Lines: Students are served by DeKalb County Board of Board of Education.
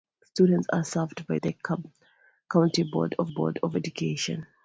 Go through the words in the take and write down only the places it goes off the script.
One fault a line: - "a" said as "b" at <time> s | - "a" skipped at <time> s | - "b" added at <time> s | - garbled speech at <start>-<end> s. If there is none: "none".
none